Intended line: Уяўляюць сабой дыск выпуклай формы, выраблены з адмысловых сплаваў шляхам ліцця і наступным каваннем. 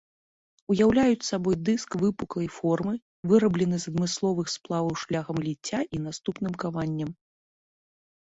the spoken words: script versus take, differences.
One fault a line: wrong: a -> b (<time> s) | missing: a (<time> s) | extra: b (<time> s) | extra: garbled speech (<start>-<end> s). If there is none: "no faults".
no faults